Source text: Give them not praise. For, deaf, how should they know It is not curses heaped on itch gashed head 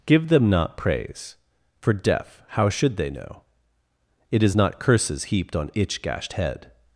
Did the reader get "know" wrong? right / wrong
right